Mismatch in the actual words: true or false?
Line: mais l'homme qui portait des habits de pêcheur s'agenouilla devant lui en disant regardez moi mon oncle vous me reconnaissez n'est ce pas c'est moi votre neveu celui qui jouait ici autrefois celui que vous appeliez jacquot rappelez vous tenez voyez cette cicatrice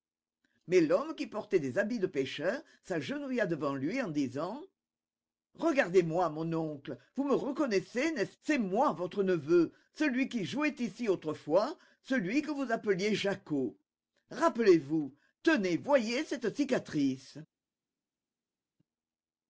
true